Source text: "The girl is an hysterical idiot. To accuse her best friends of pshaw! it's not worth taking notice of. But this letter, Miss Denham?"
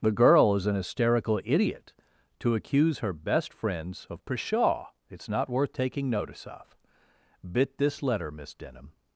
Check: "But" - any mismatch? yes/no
yes